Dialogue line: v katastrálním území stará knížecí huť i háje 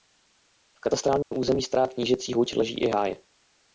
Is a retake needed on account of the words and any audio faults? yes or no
yes